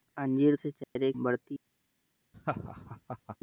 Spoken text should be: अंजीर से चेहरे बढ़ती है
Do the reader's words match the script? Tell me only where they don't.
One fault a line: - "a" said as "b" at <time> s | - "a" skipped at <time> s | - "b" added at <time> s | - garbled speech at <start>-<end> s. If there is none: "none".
none